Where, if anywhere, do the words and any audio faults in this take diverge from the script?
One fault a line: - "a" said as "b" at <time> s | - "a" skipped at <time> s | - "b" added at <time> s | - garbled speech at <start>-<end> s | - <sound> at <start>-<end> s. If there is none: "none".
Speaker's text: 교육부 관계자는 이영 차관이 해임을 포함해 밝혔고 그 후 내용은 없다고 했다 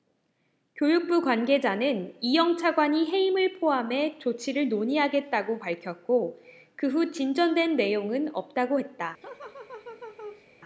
- "조치를 논의하겠다고" added at 4.2 s
- "진전된" added at 7.1 s
- laugh at 9.2-10.5 s